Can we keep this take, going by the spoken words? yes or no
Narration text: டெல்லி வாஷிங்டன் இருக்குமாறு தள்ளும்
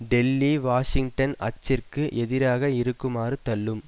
no